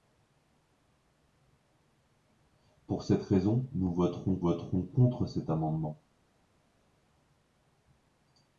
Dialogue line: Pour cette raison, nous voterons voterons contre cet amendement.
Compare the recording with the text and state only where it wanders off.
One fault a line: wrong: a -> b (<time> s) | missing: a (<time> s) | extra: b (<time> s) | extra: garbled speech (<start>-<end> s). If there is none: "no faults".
no faults